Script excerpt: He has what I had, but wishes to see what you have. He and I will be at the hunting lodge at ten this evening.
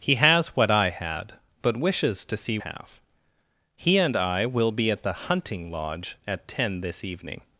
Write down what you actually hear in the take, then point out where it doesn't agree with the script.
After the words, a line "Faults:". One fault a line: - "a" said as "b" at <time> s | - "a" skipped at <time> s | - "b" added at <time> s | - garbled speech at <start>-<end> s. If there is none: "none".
He has what I had, but wishes to see have. He and I will be at the hunting lodge at ten this evening.
Faults:
- "what you" skipped at 2.6 s